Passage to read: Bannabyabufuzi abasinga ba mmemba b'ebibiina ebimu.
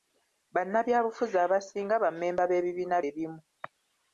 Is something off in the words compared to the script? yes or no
no